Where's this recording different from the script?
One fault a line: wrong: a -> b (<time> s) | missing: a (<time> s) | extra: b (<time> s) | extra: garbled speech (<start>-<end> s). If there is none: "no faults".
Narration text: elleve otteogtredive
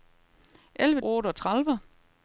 no faults